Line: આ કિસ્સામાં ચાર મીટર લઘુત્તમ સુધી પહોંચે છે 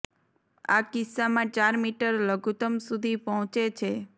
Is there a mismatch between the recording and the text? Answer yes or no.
no